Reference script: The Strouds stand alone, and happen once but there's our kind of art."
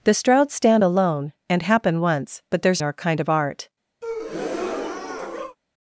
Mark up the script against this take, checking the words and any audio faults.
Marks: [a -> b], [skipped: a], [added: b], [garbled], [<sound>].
The Strouds stand alone, and happen once but there's our kind of art." [breath]